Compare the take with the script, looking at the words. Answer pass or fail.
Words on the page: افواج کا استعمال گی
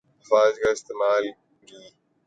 pass